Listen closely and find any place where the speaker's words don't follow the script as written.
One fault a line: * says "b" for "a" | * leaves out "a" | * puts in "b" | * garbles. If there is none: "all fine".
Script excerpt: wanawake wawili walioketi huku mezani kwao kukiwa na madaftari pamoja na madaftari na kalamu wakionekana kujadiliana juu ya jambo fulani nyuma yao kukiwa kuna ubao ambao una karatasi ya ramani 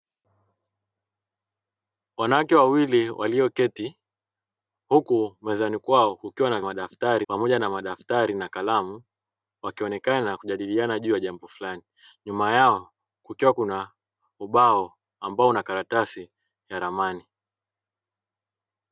all fine